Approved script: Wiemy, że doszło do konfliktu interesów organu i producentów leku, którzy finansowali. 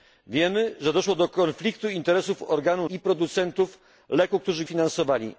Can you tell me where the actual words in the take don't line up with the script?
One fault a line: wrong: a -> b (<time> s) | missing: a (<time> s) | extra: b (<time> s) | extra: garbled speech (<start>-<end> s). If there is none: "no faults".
no faults